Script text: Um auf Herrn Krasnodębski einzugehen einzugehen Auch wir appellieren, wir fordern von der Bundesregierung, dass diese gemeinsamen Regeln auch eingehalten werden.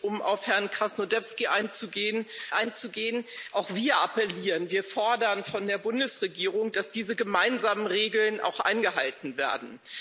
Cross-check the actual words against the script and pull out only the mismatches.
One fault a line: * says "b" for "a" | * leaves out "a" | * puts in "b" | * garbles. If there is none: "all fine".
all fine